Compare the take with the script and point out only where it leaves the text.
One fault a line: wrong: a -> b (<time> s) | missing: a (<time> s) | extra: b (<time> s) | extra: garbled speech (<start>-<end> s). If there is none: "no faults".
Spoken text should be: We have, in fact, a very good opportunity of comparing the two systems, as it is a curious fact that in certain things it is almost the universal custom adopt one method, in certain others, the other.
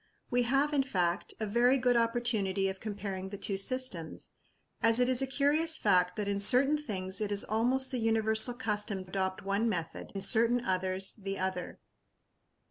no faults